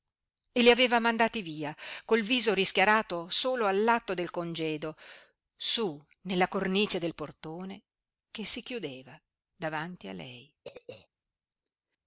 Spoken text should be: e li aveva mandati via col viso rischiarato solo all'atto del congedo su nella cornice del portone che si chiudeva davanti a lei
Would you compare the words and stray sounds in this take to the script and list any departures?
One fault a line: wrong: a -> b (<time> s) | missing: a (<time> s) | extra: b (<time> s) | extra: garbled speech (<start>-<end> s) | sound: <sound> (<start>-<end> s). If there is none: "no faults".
sound: throat clearing (10.6-11.1 s)